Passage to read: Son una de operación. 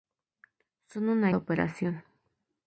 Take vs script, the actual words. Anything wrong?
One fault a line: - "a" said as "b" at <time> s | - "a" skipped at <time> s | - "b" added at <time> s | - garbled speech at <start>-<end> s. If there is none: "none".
none